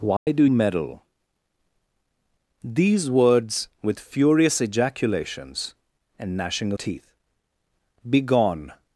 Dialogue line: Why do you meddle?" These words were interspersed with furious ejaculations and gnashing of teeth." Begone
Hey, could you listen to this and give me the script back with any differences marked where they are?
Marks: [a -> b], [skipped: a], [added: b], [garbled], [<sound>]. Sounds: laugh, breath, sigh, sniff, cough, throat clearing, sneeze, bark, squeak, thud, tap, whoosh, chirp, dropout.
Why [dropout] do [skipped: you] meddle?" These words [skipped: were interspersed] with furious ejaculations and gnashing [skipped: of] teeth." Begone